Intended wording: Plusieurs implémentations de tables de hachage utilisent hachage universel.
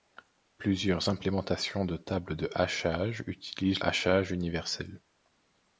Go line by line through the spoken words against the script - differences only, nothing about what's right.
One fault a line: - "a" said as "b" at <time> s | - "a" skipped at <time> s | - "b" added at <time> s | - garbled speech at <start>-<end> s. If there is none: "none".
none